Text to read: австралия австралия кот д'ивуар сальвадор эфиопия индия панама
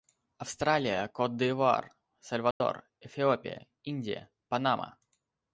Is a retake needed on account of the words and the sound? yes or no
yes